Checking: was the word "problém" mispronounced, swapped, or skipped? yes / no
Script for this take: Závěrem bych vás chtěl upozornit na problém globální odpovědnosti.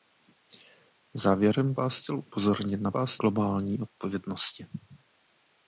yes